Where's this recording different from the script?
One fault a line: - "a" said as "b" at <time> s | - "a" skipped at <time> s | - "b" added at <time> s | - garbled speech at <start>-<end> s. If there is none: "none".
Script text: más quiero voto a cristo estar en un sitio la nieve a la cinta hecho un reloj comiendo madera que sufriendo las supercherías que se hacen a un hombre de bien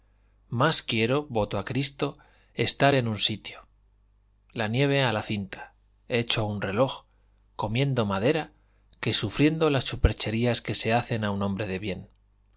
none